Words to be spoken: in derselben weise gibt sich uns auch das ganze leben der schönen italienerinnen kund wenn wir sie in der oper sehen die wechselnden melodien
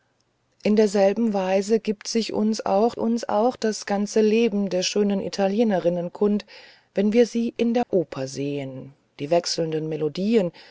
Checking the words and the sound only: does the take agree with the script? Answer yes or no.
no